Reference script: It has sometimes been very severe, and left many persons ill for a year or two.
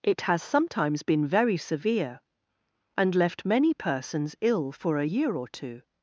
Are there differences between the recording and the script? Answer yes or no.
no